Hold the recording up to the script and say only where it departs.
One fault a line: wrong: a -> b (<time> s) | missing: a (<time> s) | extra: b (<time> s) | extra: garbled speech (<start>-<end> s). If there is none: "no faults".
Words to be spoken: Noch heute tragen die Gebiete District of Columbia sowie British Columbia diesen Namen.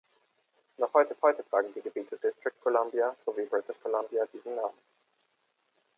extra: heute (1.2 s)
missing: of (2.6 s)